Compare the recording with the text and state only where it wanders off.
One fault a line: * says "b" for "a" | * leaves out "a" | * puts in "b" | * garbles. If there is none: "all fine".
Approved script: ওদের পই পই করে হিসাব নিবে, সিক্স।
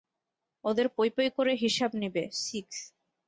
all fine